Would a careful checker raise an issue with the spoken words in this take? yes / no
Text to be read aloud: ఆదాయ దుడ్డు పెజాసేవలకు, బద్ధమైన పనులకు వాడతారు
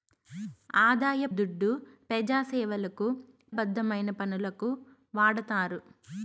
no